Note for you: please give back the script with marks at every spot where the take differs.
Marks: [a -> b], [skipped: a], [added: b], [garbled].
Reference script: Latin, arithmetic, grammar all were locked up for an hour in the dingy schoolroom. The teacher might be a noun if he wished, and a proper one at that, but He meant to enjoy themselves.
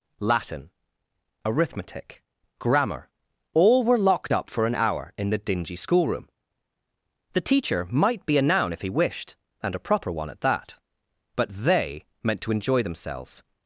Latin, arithmetic, grammar all were locked up for an hour in the dingy schoolroom. The teacher might be a noun if he wished, and a proper one at that, but [He -> THEY] meant to enjoy themselves.